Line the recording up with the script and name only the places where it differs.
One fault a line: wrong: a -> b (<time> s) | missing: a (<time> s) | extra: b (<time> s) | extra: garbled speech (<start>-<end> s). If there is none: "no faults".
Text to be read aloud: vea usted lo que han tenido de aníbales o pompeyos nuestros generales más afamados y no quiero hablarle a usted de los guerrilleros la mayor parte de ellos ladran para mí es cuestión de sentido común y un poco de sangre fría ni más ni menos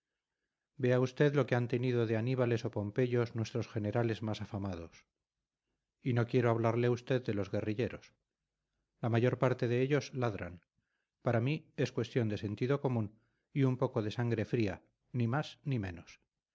no faults